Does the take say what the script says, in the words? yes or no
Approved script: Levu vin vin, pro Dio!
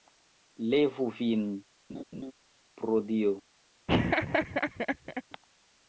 no